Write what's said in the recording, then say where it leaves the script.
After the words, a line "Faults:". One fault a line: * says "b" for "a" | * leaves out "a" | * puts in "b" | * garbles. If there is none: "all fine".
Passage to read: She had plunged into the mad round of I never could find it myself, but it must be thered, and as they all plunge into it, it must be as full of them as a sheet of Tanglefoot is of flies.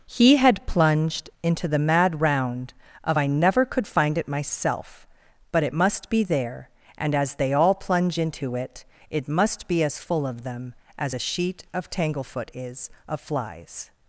He had plunged into the mad round of I never could find it myself, but it must be there, and as they all plunge into it, it must be as full of them as a sheet of Tanglefoot is of flies.
Faults:
* says "He" for "She"
* says "there" for "thered"